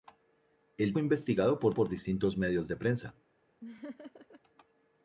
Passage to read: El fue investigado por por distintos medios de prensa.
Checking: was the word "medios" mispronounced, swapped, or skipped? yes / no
no